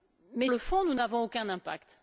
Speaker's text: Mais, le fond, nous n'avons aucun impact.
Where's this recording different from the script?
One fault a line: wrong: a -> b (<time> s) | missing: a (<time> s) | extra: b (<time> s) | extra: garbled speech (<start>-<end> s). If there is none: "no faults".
no faults